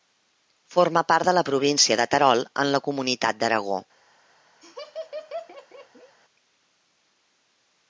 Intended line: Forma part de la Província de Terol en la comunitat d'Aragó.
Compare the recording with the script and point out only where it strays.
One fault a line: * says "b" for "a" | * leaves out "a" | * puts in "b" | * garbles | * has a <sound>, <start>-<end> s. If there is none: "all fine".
* has a laugh, 4.6-6.1 s